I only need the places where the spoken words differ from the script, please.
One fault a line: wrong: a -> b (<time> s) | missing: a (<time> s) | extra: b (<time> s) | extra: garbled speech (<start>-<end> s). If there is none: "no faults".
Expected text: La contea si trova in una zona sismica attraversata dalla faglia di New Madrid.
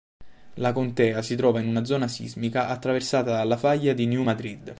no faults